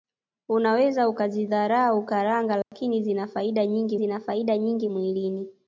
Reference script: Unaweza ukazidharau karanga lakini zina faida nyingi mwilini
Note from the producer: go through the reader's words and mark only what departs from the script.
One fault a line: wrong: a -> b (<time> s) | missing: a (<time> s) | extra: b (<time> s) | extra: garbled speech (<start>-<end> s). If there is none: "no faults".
extra: zina faida nyingi (4.0 s)